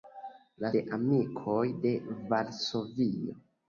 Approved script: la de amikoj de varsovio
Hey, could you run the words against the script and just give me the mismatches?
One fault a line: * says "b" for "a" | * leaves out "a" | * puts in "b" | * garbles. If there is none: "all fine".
all fine